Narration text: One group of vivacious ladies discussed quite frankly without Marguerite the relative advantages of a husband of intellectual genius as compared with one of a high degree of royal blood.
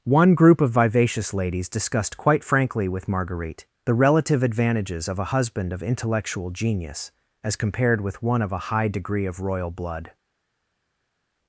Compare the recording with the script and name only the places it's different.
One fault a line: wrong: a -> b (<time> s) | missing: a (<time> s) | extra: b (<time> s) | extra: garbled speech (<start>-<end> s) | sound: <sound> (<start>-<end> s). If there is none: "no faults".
wrong: without -> with (2.9 s)